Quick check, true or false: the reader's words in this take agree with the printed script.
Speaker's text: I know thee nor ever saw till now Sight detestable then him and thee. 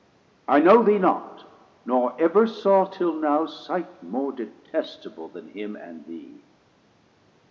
false